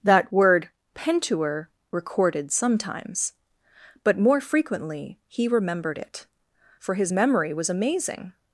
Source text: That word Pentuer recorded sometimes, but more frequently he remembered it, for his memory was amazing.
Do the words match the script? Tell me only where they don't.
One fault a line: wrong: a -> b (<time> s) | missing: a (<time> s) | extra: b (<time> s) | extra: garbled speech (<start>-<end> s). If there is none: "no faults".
no faults